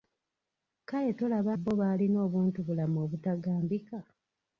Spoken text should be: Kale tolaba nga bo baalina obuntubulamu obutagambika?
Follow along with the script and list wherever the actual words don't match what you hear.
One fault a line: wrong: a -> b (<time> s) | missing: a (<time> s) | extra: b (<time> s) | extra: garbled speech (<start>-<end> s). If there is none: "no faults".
missing: nga (1.5 s)